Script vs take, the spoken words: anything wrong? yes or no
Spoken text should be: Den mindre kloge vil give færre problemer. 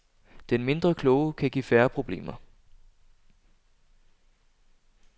yes